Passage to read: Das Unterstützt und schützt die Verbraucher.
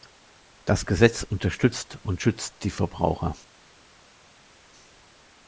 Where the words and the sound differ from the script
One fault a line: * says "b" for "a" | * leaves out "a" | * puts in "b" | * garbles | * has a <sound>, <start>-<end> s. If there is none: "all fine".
* puts in "Gesetz"